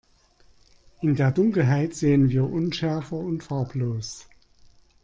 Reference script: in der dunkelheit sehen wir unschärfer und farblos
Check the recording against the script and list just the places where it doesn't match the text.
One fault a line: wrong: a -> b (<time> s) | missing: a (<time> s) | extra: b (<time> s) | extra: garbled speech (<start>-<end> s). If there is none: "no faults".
no faults